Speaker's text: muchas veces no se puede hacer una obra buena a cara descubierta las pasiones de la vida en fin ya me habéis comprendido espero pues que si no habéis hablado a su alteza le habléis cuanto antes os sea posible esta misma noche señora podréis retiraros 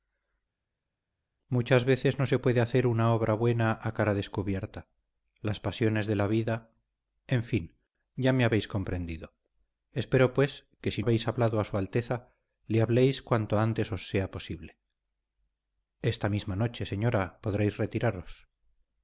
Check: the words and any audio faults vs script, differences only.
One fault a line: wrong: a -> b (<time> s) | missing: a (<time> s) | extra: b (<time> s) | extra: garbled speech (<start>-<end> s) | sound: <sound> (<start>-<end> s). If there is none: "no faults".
missing: no (11.0 s)